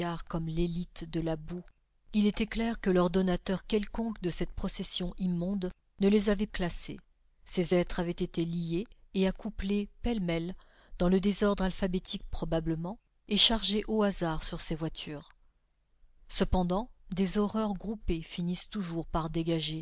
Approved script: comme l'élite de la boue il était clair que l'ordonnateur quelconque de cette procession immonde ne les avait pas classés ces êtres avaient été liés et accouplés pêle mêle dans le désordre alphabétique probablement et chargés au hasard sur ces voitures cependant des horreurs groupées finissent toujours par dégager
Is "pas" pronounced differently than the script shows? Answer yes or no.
yes